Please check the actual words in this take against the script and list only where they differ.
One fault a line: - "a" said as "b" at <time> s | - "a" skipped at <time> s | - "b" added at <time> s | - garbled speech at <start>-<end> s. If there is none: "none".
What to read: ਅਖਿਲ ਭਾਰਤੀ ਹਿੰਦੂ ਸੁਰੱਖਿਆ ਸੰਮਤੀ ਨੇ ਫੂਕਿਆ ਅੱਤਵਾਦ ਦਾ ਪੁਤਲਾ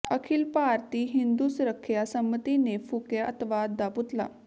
none